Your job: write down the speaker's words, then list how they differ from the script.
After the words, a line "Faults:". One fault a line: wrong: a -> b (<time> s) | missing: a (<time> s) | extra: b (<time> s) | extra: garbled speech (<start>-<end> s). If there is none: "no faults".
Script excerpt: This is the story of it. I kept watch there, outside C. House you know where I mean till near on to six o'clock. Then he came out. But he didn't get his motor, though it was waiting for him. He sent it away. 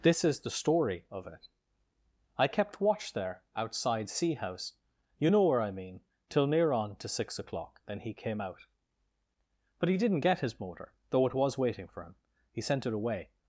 This is the story of it. I kept watch there, outside C. House you know where I mean till near on to six o'clock. Then he came out. But he didn't get his motor, though it was waiting for him. He sent it away.
Faults:
no faults